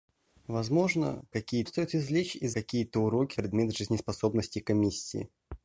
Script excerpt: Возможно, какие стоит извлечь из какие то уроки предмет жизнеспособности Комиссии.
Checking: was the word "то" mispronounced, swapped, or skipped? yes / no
no